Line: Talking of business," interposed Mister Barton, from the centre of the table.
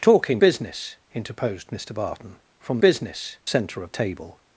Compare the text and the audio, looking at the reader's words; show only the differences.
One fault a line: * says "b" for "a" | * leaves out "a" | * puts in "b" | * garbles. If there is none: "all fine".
* leaves out "of"
* says "business" for "the"
* leaves out "the"